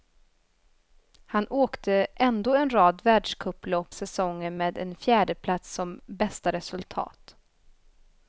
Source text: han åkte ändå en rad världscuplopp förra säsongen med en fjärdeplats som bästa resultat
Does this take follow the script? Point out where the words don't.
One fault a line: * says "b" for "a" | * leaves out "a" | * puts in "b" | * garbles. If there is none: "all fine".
* leaves out "förra"